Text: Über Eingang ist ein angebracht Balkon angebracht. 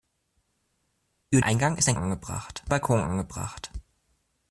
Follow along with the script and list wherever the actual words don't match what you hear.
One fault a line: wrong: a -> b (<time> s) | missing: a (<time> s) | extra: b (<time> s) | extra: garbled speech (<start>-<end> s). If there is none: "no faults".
no faults